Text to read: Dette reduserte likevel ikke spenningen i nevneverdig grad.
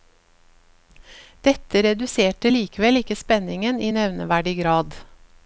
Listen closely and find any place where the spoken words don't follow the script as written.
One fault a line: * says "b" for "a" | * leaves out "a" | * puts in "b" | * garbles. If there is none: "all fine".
all fine